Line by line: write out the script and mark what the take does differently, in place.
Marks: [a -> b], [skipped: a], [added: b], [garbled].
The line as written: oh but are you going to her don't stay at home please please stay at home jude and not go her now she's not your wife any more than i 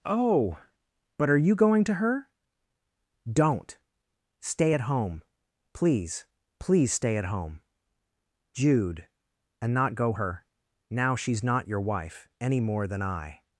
oh but are you going to her don't stay at home please please stay at home jude and not go her now she's not your wife any more than i